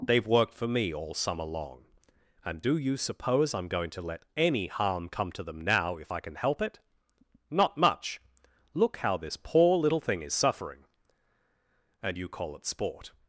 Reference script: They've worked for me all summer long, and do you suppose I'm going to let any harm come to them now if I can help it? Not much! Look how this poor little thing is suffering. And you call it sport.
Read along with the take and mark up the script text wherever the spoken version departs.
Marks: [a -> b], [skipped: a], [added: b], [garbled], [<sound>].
They've worked for me all summer long, and do you suppose I'm going to let any harm come to them now if I can help it? Not much! Look how this poor little thing is suffering. And you call it sport.